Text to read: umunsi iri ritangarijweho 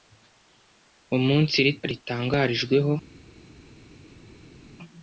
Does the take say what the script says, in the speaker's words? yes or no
yes